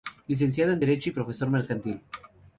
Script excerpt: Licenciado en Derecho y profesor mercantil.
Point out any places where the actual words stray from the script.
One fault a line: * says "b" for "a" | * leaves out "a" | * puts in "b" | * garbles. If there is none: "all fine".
all fine